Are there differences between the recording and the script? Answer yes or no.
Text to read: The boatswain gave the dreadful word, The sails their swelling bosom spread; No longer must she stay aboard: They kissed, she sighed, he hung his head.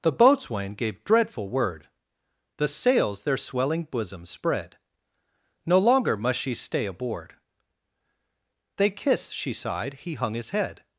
yes